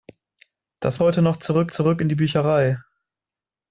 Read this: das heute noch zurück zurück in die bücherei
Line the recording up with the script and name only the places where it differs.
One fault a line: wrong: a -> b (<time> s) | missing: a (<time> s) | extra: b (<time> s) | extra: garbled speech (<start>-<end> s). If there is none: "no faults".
no faults